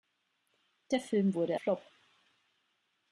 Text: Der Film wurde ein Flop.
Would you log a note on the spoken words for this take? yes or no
yes